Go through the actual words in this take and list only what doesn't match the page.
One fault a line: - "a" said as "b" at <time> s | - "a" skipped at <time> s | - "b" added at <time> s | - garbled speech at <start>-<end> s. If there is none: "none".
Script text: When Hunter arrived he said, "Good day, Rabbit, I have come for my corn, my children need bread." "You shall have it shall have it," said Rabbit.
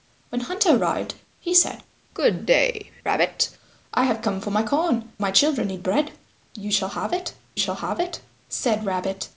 none